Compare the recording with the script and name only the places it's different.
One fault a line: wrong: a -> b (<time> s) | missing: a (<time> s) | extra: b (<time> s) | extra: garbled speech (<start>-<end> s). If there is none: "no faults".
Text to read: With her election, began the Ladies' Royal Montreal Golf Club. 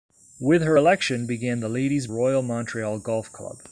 no faults